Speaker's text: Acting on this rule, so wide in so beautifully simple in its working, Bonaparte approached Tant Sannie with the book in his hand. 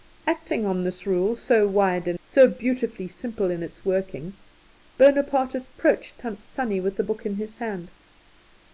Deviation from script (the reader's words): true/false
false